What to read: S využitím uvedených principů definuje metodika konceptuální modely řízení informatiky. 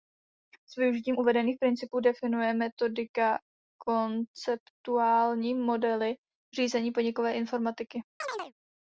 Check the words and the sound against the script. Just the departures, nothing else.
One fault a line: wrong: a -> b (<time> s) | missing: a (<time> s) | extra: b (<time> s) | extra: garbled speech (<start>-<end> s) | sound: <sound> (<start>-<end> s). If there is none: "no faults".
extra: podnikové (6.9 s)
sound: chirp (8.2-8.5 s)